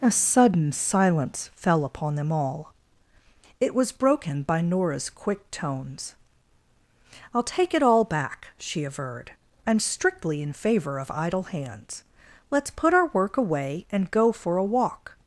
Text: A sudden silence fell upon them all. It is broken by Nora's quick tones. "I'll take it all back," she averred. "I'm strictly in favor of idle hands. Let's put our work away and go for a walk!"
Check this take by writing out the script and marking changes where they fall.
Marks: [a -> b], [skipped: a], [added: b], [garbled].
A sudden silence fell upon them all. It [is -> was] broken by Nora's quick tones. "I'll take it all back," she averred. "I'm strictly in favor of idle hands. Let's put our work away and go for a walk!"